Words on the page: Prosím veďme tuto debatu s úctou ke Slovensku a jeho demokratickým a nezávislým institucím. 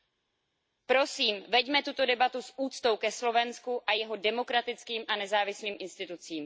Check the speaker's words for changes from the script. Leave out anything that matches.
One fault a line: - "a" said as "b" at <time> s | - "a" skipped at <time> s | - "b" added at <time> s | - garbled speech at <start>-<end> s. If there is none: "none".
none